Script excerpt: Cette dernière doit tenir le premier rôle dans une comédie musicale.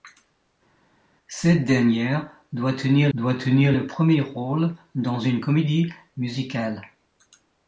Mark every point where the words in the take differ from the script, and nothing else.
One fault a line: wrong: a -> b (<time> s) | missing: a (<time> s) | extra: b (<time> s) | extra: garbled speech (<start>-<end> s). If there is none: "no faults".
extra: doit tenir (3.1 s)